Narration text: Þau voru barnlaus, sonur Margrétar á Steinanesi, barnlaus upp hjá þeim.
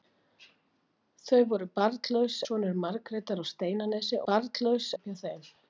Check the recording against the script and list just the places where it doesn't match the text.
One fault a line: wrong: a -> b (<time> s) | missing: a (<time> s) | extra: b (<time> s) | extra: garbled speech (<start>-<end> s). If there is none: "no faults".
no faults